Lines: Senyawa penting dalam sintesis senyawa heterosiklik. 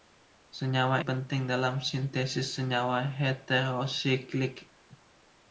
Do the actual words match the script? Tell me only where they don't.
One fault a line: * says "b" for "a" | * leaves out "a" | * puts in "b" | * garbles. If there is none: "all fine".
all fine